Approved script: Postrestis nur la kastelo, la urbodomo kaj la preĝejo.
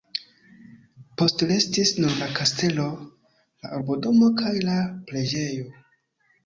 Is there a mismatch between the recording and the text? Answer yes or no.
no